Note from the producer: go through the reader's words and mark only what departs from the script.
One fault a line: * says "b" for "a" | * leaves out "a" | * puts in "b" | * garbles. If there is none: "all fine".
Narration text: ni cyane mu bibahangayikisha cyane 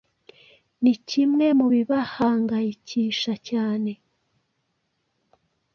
* says "kimwe" for "cyane"